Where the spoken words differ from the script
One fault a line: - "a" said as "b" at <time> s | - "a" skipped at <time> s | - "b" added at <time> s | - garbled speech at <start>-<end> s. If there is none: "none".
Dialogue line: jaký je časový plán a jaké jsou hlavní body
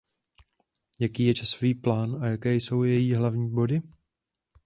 - "její" added at 2.8 s